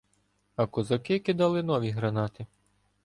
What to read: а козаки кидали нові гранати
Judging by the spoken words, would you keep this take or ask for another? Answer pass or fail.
pass